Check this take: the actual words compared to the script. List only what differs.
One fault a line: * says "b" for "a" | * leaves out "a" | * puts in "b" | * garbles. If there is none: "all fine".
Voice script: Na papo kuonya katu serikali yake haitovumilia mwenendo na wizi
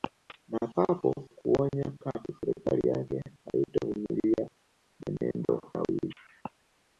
all fine